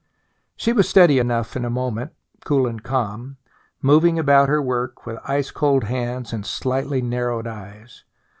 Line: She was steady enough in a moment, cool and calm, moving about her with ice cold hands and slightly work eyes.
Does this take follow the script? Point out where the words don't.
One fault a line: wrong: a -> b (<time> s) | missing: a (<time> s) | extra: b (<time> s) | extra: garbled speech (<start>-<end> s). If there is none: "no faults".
extra: work (4.6 s)
wrong: work -> narrowed (7.0 s)